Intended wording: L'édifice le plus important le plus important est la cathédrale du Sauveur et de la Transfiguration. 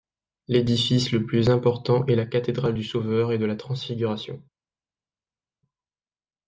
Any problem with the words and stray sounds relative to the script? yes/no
yes